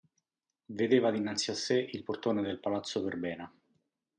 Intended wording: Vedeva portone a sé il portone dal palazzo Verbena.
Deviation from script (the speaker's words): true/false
true